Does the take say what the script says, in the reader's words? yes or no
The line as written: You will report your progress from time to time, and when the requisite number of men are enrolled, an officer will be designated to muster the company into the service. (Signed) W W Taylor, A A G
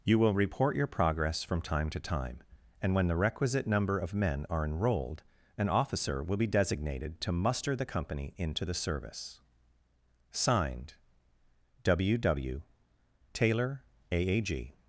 yes